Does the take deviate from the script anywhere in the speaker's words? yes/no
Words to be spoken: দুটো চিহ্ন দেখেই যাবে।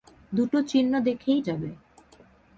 no